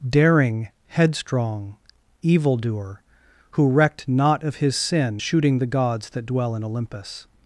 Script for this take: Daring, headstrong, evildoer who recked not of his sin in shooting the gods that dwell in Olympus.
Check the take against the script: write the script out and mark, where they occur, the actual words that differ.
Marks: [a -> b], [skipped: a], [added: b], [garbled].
Daring, headstrong, evildoer who recked not of his sin [skipped: in] shooting the gods that dwell in Olympus.